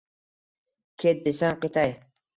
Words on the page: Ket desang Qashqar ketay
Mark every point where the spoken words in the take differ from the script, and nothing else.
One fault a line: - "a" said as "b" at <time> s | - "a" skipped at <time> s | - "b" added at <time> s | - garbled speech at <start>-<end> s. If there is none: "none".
- "Qashqar" skipped at 1.6 s